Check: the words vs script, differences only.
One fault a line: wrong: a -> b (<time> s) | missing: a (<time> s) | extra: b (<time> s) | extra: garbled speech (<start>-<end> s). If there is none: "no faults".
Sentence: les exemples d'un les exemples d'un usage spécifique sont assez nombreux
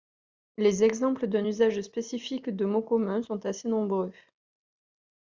wrong: les exemples d'un usage spécifique -> usage spécifique de mots communs (1.4 s)